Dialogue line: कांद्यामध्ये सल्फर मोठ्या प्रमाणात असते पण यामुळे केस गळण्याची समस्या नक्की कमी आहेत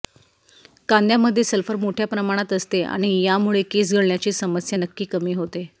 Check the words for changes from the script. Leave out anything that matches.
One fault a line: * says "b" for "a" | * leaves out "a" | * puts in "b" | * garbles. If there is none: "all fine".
* says "आणि" for "पण"
* says "होते" for "आहेत"